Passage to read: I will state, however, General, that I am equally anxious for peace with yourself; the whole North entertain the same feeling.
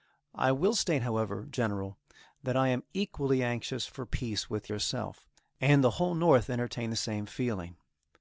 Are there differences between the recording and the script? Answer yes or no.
yes